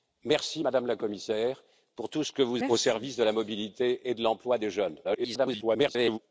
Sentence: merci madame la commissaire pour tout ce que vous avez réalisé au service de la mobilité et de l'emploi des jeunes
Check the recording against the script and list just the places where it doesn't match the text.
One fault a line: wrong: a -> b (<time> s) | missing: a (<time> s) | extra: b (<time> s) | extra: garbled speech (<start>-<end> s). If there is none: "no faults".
missing: avez réalisé (2.6 s)
extra: garbled speech (5.0-6.2 s)